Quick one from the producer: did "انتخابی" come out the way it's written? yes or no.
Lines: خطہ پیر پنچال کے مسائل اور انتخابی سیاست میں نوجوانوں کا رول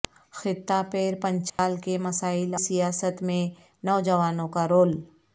no